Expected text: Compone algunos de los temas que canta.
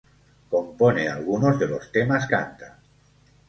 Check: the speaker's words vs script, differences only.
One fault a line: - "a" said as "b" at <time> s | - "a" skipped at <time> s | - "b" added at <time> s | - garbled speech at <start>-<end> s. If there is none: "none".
- "que" skipped at 2.3 s